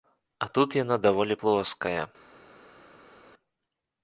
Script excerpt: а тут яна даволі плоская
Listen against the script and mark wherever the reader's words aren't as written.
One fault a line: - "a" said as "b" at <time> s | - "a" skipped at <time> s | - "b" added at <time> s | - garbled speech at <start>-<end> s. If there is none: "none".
none